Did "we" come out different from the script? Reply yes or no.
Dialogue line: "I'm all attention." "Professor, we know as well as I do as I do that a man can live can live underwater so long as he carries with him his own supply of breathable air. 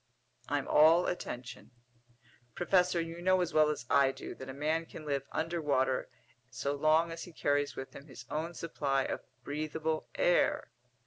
yes